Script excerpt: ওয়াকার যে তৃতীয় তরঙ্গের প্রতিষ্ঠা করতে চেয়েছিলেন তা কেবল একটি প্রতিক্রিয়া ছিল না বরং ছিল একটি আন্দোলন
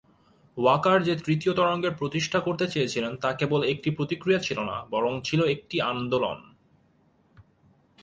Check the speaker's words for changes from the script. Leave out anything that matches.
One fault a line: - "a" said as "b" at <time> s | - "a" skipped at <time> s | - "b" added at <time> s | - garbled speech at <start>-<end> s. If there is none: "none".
none